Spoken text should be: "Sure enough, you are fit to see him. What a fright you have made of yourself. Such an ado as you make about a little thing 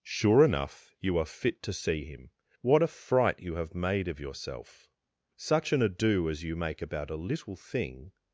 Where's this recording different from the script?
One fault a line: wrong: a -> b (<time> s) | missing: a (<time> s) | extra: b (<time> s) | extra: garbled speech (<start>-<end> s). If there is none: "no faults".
no faults